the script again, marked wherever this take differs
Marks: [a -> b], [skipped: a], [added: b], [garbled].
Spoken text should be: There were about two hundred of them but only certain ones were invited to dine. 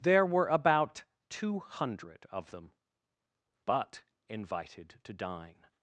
There were about two hundred of them but [skipped: only certain ones were] invited to dine.